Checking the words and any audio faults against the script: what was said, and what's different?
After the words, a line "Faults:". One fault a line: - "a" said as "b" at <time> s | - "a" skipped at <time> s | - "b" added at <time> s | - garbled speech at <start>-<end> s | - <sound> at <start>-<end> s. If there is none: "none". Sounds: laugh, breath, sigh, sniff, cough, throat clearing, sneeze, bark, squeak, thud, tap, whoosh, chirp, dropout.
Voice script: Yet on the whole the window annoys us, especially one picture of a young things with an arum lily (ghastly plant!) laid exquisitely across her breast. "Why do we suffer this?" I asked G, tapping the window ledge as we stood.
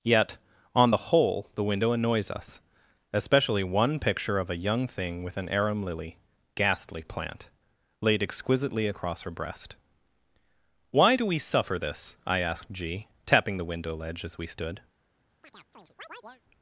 Yet on the whole the window annoys us, especially one picture of a young thing with an arum lily (ghastly plant!) laid exquisitely across her breast. "Why do we suffer this?" I asked G, tapping the window ledge as we stood.
Faults:
- "things" said as "thing" at 4.9 s
- chirp at 15.4-16.4 s